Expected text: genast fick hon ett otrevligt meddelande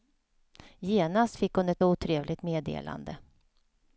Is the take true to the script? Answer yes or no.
yes